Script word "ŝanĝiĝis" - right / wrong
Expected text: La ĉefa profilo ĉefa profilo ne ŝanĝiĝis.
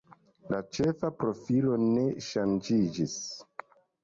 right